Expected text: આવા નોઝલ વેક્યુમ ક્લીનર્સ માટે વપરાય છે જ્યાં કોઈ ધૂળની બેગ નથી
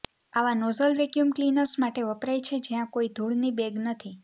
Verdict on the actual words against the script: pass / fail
pass